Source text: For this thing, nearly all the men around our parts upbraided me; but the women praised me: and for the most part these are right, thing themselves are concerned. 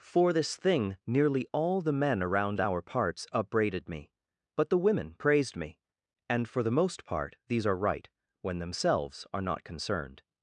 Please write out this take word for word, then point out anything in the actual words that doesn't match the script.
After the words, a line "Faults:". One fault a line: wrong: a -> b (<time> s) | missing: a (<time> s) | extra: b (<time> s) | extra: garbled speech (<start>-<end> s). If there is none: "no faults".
For this thing, nearly all the men around our parts upbraided me; but the women praised me: and for the most part these are right, when themselves are not concerned.
Faults:
wrong: thing -> when (8.4 s)
extra: not (9.4 s)